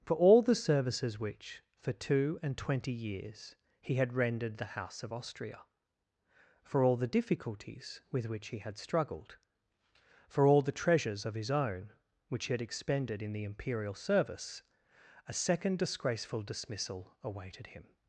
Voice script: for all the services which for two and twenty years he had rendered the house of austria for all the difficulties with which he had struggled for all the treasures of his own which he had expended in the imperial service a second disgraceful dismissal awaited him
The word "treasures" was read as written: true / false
true